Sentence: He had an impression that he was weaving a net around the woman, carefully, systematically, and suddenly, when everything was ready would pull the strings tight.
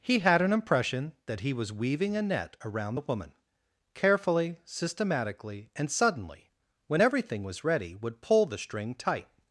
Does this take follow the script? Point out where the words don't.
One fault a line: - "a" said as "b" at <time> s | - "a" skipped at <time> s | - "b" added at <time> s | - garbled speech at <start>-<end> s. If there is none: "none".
- "strings" said as "string" at 8.6 s